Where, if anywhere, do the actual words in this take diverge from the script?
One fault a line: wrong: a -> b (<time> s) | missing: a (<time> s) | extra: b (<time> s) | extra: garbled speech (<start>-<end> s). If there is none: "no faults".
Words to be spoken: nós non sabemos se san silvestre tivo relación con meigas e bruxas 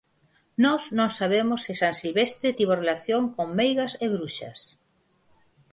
no faults